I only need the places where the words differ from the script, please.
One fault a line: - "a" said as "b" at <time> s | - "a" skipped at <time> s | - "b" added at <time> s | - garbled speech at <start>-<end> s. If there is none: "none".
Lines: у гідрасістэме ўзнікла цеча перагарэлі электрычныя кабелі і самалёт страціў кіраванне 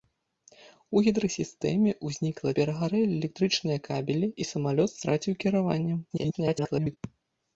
- "цеча" skipped at 2.5 s
- garbled speech at 6.1-7.0 s